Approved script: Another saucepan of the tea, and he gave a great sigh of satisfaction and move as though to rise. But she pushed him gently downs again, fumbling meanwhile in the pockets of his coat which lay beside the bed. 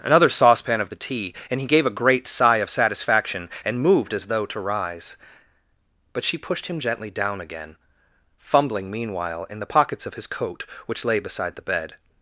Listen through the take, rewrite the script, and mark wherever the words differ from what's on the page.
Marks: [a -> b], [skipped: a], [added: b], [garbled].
Another saucepan of the tea, and he gave a great sigh of satisfaction and [move -> moved] as though to rise. But she pushed him gently [downs -> down] again, fumbling meanwhile in the pockets of his coat which lay beside the bed.